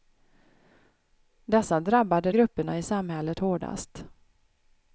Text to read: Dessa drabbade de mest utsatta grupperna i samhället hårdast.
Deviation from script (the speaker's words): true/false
true